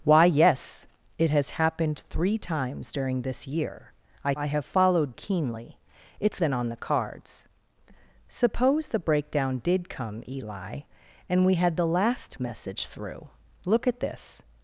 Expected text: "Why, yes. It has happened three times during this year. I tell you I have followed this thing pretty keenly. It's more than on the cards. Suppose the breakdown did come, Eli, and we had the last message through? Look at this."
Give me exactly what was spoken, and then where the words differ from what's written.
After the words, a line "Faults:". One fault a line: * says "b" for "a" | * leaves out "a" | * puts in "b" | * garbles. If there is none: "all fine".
"Why, yes. It has happened three times during this year. I I have followed keenly. It's than on the cards. Suppose the breakdown did come, Eli, and we had the last message through? Look at this."
Faults:
* leaves out "tell you"
* leaves out "this thing pretty"
* leaves out "more"